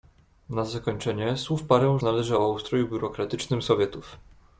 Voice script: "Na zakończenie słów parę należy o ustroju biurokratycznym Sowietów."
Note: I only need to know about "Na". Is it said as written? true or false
true